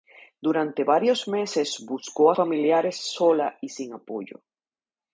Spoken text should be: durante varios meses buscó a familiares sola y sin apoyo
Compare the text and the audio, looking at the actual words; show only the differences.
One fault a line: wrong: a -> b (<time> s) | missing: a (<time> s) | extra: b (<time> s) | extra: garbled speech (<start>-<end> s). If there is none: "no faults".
no faults